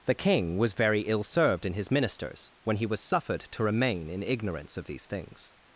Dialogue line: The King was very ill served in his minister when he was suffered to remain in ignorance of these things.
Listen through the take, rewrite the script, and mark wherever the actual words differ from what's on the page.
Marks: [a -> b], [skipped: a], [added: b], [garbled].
The King was very ill served in his [minister -> ministers] when he was suffered to remain in ignorance of these things.